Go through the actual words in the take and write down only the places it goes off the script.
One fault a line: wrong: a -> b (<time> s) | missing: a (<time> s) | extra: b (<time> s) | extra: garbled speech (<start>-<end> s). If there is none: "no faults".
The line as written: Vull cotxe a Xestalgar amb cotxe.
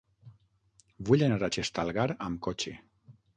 wrong: cotxe -> anar (1.3 s)